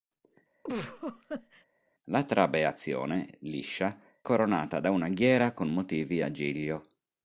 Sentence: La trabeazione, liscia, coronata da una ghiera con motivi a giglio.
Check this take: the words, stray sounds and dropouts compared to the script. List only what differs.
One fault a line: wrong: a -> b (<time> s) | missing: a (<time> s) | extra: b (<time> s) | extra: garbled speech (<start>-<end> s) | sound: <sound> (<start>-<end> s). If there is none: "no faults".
sound: laugh (0.6-1.6 s)